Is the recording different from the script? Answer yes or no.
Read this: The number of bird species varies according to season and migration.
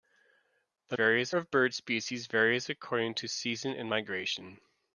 yes